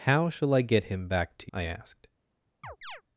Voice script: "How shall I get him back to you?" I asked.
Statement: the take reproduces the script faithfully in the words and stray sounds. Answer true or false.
false